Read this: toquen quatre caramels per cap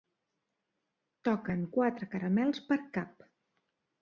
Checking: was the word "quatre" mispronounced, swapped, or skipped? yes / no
no